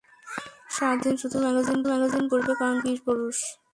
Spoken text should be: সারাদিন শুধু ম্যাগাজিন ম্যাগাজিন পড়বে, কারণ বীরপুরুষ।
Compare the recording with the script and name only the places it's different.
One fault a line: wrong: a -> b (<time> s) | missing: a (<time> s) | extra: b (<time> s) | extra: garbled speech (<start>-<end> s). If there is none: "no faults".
no faults